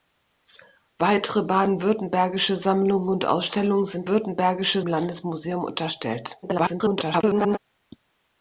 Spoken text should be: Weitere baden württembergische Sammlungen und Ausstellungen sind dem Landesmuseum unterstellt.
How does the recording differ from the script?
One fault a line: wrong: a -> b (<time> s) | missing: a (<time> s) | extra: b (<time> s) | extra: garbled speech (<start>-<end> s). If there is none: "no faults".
wrong: dem -> württembergische (4.1 s)
extra: garbled speech (6.4-7.6 s)